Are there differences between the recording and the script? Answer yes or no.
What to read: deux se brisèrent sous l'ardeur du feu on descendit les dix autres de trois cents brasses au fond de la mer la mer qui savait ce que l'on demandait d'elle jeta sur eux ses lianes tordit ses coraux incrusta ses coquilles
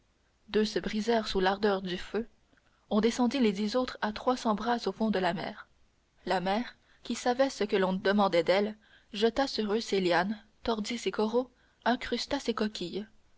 yes